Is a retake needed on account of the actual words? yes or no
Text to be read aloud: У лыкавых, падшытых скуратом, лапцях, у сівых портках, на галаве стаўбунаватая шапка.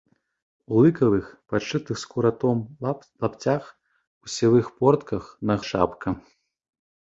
yes